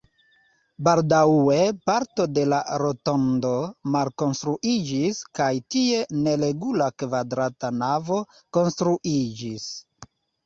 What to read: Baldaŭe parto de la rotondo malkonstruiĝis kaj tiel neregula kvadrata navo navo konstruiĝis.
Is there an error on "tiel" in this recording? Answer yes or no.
yes